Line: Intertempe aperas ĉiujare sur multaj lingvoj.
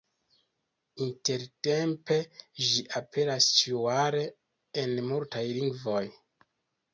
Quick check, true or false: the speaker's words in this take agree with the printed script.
false